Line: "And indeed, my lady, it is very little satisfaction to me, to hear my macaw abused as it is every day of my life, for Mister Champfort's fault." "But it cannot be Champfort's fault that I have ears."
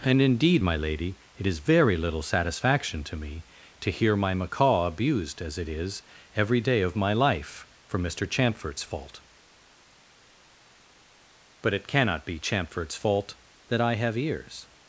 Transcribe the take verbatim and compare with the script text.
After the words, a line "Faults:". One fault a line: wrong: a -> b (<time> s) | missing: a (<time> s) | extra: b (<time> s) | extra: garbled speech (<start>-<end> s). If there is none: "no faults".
"And indeed, my lady, it is very little satisfaction to me, to hear my macaw abused as it is every day of my life, for Mister Champfort's fault." "But it cannot be Champfort's fault that I have ears."
Faults:
no faults